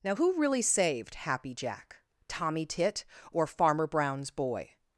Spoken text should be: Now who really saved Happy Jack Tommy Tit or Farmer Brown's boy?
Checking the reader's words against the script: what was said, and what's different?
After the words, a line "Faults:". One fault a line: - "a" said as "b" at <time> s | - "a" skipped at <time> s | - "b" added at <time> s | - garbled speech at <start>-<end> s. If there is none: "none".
Now who really saved Happy Jack Tommy Tit or Farmer Brown's boy?
Faults:
none